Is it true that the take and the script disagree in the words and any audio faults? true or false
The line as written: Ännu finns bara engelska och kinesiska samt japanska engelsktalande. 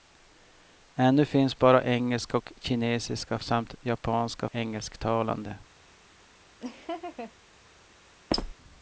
true